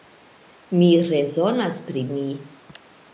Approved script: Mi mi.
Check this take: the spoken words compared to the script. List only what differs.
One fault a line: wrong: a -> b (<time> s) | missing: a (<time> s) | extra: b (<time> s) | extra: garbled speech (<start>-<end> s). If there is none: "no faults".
extra: rezonas pri (1.1 s)